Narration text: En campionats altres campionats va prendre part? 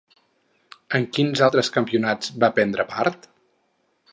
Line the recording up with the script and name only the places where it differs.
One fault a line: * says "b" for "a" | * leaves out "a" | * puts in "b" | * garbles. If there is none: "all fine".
* says "quins" for "campionats"